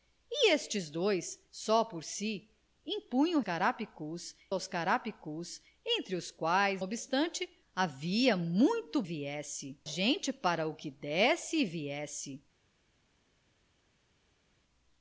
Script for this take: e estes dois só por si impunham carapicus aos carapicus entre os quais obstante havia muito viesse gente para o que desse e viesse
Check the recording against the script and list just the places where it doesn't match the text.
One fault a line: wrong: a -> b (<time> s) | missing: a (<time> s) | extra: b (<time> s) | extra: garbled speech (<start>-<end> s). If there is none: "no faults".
no faults